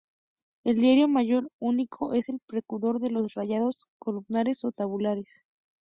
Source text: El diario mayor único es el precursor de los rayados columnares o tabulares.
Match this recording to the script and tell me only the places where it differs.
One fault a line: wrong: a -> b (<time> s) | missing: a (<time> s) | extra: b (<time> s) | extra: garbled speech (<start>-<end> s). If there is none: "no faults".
no faults